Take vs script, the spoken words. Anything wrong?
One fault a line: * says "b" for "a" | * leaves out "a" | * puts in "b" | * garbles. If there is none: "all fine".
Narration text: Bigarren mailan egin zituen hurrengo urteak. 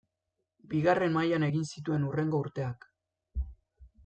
all fine